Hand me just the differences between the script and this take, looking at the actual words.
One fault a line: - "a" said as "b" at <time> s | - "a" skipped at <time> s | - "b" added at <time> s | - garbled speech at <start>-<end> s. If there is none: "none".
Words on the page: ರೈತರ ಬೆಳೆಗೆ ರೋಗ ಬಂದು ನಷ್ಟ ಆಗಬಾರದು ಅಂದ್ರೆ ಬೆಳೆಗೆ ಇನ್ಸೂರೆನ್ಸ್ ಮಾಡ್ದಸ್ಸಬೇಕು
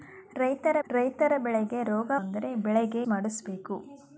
- "ರೈತರ" added at 0.9 s
- "ಬಂದು ನಷ್ಟ ಆಗಬಾರದು" skipped at 2.1 s
- "ಇನ್ಸೂರೆನ್ಸ್" skipped at 3.0 s